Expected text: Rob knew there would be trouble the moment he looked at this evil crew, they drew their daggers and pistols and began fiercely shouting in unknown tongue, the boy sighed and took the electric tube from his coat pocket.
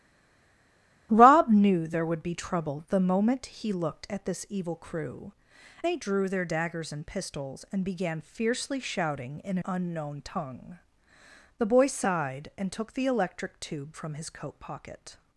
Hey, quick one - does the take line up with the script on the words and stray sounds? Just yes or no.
yes